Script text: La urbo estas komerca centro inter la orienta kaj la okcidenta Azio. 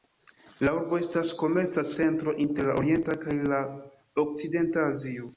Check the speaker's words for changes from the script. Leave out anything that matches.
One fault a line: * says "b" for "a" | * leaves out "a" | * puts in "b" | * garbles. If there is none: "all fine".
all fine